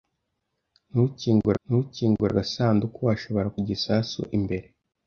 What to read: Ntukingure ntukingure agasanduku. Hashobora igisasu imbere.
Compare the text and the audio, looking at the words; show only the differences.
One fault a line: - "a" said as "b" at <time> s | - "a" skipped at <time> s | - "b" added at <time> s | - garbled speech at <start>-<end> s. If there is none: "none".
none